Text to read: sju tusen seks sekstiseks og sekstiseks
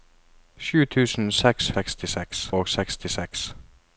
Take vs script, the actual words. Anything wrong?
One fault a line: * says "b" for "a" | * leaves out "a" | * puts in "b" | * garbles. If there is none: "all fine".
all fine